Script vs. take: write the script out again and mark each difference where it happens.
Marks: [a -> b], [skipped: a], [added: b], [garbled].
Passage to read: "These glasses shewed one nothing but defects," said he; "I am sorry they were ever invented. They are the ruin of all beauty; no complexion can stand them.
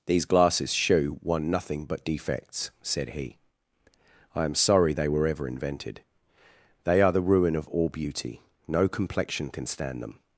"These glasses [shewed -> shew] one nothing but defects," said he; "I am sorry they were ever invented. They are the ruin of all beauty; no complexion can stand them.